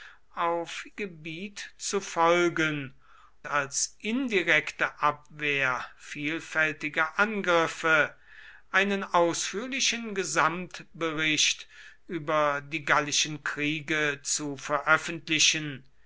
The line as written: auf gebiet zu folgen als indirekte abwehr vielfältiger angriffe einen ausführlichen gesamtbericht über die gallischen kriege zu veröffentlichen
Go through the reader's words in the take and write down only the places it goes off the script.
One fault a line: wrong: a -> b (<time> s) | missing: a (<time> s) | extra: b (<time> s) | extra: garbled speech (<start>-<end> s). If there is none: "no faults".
no faults